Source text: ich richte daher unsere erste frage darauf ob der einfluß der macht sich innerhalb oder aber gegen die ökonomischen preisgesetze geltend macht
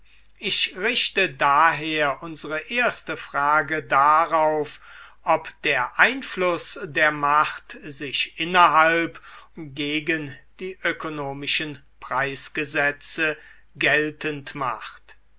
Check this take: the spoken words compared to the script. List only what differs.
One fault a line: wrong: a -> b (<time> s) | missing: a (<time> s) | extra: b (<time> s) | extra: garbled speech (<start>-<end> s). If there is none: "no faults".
missing: oder aber (9.2 s)